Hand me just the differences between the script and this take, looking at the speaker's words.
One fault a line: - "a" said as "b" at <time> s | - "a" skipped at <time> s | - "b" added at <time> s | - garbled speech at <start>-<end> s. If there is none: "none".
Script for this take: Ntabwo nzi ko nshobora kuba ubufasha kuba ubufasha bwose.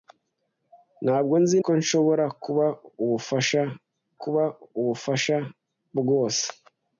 none